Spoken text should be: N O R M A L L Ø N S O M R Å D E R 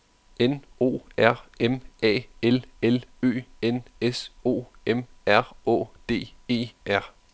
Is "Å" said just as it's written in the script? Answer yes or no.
yes